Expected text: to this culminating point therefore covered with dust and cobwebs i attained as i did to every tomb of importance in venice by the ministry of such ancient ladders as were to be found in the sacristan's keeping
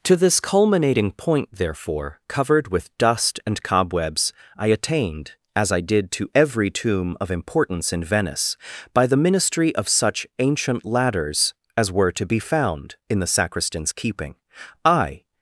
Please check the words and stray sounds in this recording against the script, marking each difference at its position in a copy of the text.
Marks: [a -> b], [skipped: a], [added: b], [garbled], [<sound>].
to this culminating point therefore covered with dust and cobwebs i attained as i did to every tomb of importance in venice by the ministry of such ancient ladders as were to be found in the sacristan's keeping [added: i]